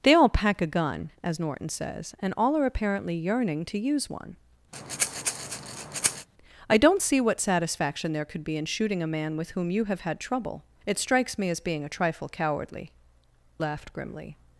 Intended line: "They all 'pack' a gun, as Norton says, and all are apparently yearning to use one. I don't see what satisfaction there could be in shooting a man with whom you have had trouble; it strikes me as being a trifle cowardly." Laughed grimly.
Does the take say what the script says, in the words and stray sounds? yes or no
no